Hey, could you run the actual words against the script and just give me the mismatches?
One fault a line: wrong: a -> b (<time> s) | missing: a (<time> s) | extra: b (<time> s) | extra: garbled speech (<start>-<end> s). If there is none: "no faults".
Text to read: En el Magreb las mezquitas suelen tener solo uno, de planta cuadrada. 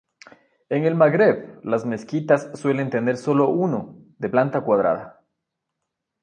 no faults